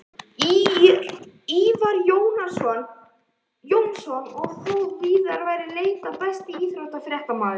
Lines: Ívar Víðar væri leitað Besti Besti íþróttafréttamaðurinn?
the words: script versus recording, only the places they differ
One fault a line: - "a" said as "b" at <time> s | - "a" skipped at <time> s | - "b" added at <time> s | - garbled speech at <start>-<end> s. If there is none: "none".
- "Jónsson og þó" added at 3.7 s
- "Besti" skipped at 6.5 s